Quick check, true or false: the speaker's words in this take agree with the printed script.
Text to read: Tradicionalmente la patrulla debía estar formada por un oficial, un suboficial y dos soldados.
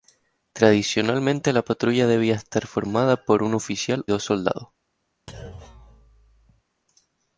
false